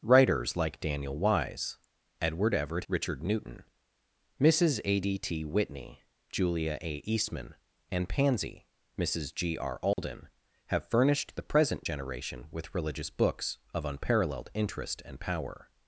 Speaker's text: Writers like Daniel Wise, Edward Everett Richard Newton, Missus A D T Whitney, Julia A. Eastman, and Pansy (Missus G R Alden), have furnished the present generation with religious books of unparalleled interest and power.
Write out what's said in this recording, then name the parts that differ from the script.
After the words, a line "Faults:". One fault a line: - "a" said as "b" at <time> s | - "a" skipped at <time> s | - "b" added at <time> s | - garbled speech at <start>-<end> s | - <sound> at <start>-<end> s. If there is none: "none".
Writers like Daniel Wise, Edward Everett Richard Newton, Missus A D T Whitney, Julia A. Eastman, and Pansy (Missus G R Alden), have furnished the present generation with religious books of unparalleled interest and power.
Faults:
- dropout at 9.9-10.0 s